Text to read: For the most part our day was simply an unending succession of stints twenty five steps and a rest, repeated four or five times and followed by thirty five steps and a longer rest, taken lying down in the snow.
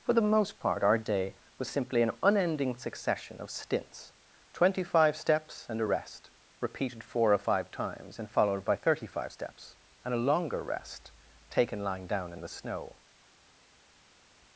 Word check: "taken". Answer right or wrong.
right